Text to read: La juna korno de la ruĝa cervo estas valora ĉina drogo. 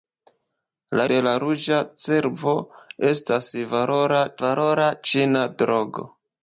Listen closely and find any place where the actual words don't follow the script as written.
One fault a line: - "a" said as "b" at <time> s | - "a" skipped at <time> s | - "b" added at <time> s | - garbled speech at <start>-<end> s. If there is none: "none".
- "juna korno" skipped at 1.0 s
- "valora" added at 4.4 s